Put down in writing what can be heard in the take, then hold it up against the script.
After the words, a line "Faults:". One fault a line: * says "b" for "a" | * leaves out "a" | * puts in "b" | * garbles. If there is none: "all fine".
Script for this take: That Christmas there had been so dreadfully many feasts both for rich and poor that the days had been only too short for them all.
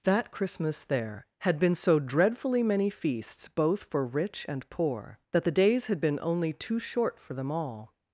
That Christmas there had been so dreadfully many feasts both for rich and poor that the days had been only too short for them all.
Faults:
all fine